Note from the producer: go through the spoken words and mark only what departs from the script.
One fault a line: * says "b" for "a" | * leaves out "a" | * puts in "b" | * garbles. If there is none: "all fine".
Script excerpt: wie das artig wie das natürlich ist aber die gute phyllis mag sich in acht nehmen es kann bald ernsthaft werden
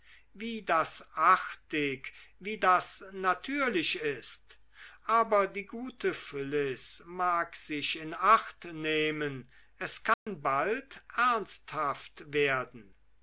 all fine